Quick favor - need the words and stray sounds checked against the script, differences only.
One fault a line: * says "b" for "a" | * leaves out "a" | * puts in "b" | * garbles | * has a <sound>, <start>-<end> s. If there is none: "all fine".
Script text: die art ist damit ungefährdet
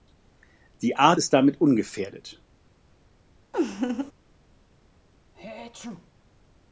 * has a laugh, 3.5-4.1 s
* has a sneeze, 5.3-6.1 s